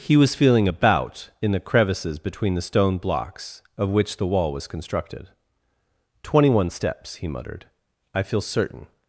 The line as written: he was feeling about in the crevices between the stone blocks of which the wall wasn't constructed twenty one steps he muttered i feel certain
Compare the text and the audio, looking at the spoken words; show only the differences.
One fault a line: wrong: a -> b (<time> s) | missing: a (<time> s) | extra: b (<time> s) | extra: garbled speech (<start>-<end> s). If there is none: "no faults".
wrong: wasn't -> was (4.5 s)